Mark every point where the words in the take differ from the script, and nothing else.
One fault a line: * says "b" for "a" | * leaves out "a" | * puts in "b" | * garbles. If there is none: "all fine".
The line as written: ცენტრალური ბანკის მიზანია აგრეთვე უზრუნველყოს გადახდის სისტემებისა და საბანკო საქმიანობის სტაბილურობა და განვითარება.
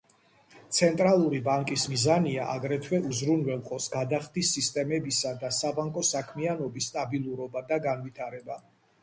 all fine